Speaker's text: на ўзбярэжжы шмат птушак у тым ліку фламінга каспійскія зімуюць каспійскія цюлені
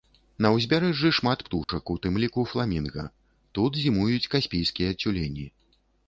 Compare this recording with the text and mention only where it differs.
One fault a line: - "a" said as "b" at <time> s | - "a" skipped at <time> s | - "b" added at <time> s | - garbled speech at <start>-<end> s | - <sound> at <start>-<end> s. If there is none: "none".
- dropout at 1.6-1.7 s
- "каспійскія" said as "тут" at 3.6 s